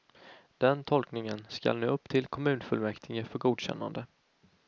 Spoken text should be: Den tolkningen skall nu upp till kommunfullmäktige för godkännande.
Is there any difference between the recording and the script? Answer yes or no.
no